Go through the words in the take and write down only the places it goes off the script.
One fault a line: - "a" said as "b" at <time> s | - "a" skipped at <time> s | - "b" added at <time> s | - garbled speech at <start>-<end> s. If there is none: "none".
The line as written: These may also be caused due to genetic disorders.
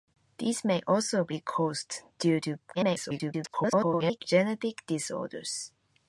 - garbled speech at 2.7-4.2 s